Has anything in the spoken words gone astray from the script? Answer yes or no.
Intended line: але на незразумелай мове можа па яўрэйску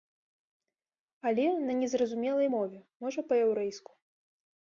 no